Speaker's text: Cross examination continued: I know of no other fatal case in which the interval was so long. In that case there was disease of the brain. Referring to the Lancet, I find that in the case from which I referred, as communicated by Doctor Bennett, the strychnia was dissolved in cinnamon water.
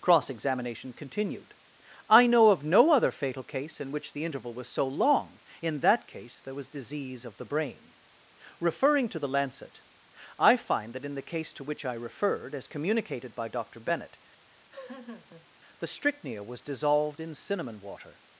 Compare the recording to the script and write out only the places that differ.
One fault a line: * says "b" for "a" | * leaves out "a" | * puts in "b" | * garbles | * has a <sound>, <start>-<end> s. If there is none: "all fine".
* says "to" for "from"
* has a laugh, 14.4-15.5 s